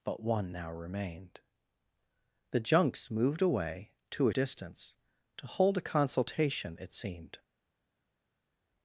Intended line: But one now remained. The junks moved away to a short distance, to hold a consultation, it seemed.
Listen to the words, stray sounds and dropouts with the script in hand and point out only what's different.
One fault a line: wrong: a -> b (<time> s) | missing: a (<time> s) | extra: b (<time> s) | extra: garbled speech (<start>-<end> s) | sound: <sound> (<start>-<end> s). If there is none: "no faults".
missing: short (4.3 s)